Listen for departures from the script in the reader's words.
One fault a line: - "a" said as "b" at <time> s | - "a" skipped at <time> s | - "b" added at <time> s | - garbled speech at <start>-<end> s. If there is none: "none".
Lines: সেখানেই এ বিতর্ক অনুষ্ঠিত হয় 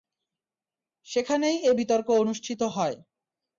none